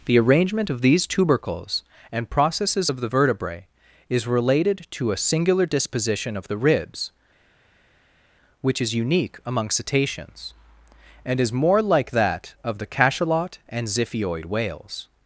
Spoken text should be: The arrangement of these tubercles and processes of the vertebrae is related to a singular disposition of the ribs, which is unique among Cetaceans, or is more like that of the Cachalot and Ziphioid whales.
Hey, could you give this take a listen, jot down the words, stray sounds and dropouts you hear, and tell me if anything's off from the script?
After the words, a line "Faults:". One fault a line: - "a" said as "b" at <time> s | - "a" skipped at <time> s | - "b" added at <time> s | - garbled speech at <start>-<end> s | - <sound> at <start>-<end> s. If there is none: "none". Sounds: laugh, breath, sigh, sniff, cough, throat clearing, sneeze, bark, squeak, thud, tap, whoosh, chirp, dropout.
The arrangement of these tubercles and processes of the vertebrae is related to a singular disposition of the ribs, which is unique among Cetaceans, and is more like that of the Cachalot and Ziphioid whales.
Faults:
- "or" said as "and" at 11.2 s